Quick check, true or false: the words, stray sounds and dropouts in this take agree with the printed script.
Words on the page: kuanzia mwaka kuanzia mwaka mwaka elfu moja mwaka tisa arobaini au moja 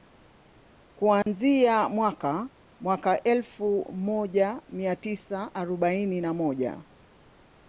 false